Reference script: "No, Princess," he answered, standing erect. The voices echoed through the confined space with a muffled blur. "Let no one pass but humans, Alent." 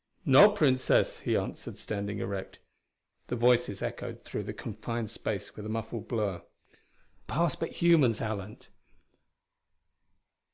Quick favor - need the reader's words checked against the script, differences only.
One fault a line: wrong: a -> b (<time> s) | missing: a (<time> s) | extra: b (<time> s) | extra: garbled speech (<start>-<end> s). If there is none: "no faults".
missing: Let no one (6.4 s)